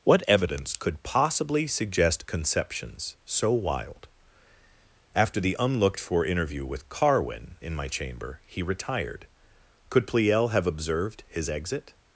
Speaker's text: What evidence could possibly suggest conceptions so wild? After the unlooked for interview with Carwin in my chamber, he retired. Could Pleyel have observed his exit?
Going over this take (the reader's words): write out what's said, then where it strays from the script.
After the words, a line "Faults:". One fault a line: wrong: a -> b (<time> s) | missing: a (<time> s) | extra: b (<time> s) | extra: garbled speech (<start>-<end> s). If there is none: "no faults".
What evidence could possibly suggest conceptions so wild? After the unlooked for interview with Carwin in my chamber, he retired. Could Pleyel have observed his exit?
Faults:
no faults